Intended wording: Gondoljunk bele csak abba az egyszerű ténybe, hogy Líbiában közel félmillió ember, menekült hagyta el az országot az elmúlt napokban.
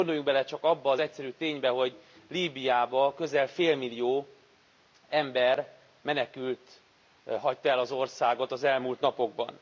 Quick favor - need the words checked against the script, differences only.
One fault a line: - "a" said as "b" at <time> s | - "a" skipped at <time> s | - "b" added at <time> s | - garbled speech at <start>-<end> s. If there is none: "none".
none